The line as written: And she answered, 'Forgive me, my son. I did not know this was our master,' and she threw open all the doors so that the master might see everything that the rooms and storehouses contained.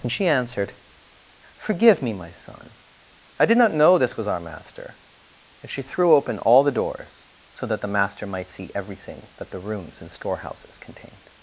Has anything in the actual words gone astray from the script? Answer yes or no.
no